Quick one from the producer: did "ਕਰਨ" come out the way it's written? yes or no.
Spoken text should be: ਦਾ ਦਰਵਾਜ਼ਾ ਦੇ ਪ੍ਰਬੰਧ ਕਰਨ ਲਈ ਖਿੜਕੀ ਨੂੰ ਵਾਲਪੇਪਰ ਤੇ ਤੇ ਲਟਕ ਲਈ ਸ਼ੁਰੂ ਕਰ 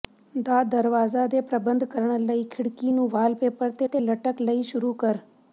yes